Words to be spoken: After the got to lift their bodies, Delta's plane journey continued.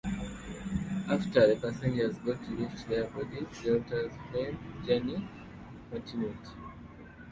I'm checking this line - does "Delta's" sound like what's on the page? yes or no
yes